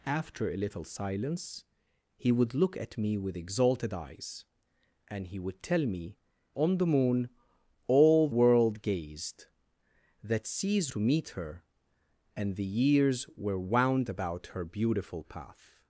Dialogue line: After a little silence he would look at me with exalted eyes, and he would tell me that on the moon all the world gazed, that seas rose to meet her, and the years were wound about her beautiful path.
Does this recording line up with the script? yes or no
no